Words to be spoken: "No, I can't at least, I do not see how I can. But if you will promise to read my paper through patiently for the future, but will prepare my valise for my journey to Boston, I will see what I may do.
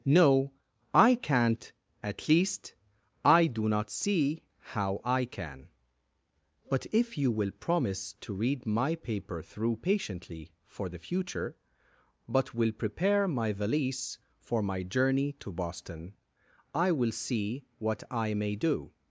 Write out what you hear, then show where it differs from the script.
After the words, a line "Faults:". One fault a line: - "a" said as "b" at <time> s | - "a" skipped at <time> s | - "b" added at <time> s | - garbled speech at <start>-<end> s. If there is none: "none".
"No, I can't at least, I do not see how I can. But if you will promise to read my paper through patiently for the future, but will prepare my valise for my journey to Boston, I will see what I may do.
Faults:
none